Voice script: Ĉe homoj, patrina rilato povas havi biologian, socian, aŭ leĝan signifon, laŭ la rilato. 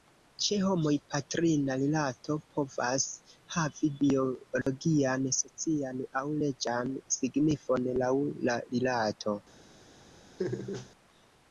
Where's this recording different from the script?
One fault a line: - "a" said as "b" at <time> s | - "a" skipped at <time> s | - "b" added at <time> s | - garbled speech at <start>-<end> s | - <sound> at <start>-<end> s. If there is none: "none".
- dropout at 4.6-4.7 s
- laugh at 10.4-10.9 s